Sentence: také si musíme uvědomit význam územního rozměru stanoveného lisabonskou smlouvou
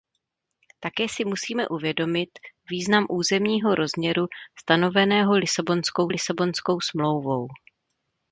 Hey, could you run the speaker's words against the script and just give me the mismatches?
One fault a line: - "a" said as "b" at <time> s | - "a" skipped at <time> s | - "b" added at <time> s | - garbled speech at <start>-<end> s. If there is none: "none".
- "lisabonskou" added at 6.1 s